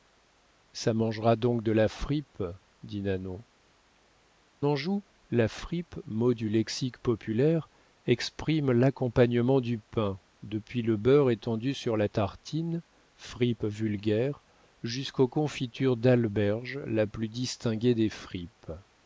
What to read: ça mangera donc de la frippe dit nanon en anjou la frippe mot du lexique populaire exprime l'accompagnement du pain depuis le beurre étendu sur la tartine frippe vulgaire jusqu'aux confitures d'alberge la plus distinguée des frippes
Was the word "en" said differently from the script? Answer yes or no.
yes